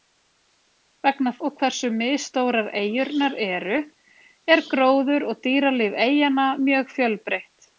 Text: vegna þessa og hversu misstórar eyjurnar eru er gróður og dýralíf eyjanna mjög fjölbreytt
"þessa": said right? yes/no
no